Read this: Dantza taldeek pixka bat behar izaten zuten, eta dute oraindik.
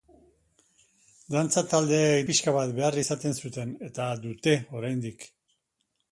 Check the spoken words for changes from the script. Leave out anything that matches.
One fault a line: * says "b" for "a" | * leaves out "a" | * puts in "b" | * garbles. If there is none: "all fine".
all fine